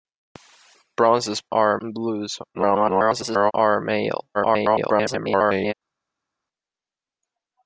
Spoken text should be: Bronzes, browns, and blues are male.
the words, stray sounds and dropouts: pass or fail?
fail